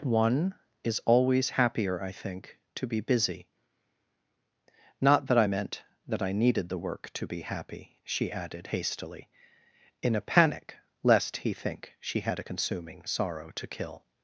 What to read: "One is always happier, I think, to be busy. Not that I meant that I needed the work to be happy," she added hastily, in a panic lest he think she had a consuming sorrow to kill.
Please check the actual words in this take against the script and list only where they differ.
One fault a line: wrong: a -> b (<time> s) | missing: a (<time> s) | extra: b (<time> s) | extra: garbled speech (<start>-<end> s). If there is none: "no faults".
no faults